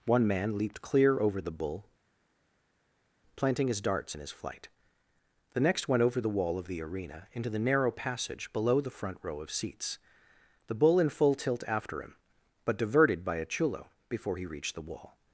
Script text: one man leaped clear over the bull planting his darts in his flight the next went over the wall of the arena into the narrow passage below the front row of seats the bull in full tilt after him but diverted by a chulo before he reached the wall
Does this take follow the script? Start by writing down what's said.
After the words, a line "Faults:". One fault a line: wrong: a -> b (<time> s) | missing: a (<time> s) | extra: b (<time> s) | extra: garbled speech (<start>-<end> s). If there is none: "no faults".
one man leaped clear over the bull planting his darts in his flight the next went over the wall of the arena into the narrow passage below the front row of seats the bull in full tilt after him but diverted by a chulo before he reached the wall
Faults:
no faults